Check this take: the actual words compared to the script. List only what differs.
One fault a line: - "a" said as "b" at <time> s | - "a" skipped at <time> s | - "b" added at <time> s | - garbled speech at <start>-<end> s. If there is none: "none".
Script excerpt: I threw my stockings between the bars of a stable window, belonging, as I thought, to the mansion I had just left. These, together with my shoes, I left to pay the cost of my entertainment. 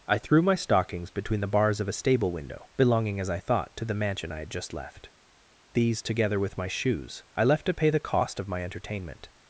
none